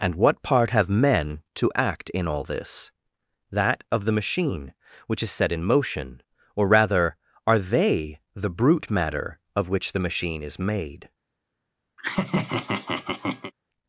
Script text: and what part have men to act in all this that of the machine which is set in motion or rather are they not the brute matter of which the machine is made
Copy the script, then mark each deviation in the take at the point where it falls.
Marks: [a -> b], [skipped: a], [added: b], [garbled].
and what part have men to act in all this that of the machine which is set in motion or rather are they [skipped: not] the brute matter of which the machine is made